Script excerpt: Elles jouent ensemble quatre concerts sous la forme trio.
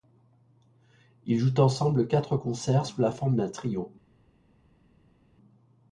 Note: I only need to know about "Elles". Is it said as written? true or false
false